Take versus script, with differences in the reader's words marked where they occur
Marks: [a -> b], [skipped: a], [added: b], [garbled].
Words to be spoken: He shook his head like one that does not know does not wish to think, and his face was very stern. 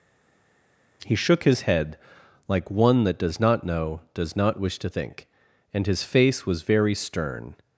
He shook his head like one that does not know does not wish to think, and his face was very stern.